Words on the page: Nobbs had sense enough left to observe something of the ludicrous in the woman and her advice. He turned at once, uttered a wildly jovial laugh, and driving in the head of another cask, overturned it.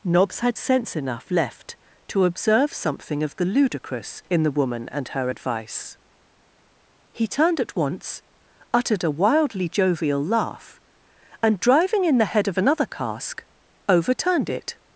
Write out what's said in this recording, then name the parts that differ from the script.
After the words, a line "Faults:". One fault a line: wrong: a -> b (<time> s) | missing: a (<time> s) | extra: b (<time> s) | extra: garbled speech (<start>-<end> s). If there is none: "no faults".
Nobbs had sense enough left to observe something of the ludicrous in the woman and her advice. He turned at once, uttered a wildly jovial laugh, and driving in the head of another cask, overturned it.
Faults:
no faults